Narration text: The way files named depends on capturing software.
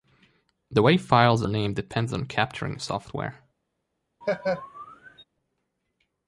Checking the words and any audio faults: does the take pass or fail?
fail